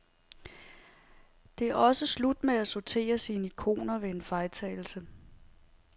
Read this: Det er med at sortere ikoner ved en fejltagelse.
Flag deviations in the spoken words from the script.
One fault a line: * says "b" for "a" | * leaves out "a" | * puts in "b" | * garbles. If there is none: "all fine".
* puts in "også slut"
* puts in "sine"